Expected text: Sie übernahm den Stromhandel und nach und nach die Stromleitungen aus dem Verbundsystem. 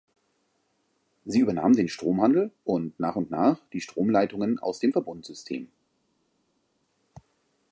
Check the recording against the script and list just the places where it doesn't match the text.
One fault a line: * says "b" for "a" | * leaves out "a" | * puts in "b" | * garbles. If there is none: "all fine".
all fine